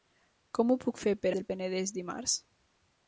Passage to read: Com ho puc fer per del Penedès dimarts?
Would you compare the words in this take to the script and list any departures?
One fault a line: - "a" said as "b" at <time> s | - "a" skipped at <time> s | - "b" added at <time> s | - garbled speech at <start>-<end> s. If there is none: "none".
none